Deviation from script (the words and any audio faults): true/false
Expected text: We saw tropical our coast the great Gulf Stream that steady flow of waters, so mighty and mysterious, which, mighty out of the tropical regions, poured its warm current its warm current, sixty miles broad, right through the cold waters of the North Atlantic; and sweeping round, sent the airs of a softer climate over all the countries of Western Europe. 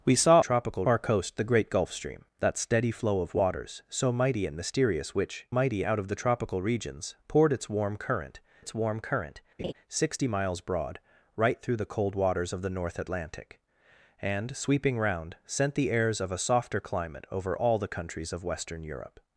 true